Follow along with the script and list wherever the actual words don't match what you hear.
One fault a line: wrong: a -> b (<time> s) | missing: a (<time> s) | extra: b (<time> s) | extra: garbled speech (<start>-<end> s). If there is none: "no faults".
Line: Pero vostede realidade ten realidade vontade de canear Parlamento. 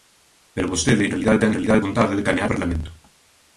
no faults